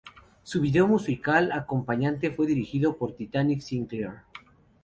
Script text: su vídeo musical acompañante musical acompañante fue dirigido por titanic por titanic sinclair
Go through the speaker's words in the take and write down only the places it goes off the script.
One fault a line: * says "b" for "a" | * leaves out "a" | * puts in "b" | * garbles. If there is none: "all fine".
* leaves out "musical acompañante"
* leaves out "por titanic"